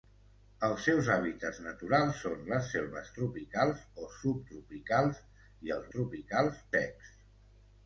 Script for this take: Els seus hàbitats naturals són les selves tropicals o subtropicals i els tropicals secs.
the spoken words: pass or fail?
pass